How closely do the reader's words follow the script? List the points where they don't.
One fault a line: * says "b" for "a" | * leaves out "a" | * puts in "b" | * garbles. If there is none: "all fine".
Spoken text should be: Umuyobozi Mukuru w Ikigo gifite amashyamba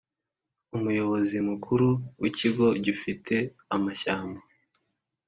all fine